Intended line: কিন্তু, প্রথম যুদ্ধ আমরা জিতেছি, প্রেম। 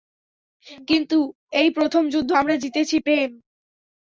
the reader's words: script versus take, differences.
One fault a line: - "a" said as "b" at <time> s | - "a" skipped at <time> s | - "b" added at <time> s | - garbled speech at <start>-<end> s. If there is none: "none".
- "এই" added at 1.5 s